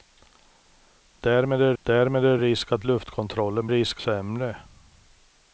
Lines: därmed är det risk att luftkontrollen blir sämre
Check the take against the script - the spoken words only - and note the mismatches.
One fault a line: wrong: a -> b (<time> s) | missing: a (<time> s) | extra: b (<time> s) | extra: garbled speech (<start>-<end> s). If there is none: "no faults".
extra: därmed är (1.8 s)
wrong: blir -> risk (3.7 s)